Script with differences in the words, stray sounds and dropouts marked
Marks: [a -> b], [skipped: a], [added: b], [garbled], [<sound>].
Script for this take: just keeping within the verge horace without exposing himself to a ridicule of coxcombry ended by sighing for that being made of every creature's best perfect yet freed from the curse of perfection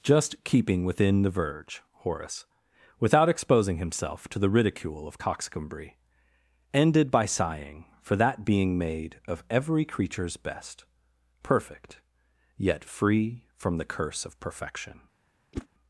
just keeping within the verge horace without exposing himself to [a -> the] ridicule of coxcombry ended by sighing for that being made of every creature's best perfect yet [freed -> free] from the curse of perfection [whoosh]